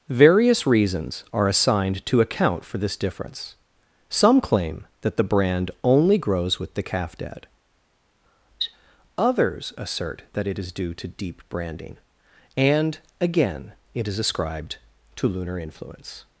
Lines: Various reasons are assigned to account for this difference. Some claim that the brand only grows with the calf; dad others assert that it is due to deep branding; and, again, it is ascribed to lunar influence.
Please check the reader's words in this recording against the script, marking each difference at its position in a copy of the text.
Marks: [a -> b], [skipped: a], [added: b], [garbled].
Various reasons are assigned to account for this difference. Some claim that the brand only grows with the calf; dad others assert that it is due to deep branding; and, again, it is ascribed to lunar influence.